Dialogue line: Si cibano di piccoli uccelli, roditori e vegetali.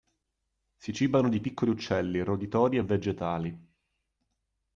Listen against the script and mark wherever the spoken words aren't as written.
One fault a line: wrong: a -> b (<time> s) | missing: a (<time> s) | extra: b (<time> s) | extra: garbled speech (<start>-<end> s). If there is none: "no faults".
no faults